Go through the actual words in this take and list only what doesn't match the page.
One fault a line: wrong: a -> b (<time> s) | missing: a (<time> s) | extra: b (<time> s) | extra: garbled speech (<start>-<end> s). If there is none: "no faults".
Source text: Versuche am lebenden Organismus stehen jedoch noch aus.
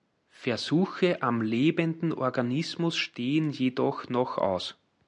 no faults